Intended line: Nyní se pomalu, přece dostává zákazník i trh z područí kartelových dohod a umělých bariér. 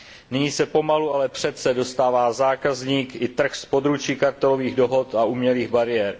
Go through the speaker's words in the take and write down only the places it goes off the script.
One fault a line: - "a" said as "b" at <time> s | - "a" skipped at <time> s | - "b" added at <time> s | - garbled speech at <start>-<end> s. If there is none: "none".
- "ale" added at 1.1 s